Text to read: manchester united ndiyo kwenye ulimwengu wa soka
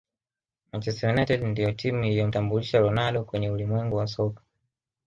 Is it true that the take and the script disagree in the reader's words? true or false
true